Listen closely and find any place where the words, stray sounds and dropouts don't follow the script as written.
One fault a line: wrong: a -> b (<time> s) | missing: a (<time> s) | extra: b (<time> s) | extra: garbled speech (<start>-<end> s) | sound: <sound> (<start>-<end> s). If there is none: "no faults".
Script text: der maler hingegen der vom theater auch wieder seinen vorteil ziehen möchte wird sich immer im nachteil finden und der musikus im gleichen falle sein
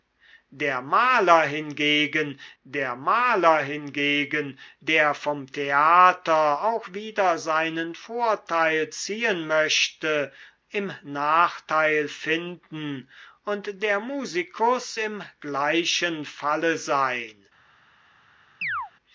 extra: maler hingegen der (3.0 s)
missing: wird sich immer (10.3 s)
sound: chirp (18.6-18.9 s)